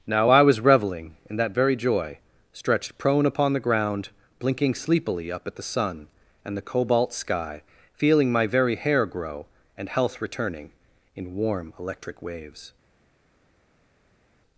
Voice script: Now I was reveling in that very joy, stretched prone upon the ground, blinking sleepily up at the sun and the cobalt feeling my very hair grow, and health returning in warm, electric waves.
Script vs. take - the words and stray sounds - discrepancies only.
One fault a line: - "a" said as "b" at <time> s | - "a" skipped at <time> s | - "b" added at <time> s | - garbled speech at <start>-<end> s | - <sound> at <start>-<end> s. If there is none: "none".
- "sky" added at 7.1 s